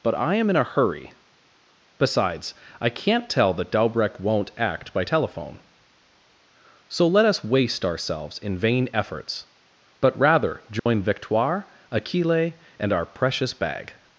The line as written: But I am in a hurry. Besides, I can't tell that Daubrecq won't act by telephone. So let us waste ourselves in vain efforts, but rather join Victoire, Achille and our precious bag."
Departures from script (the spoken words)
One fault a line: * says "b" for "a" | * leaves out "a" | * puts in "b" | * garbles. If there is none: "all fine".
all fine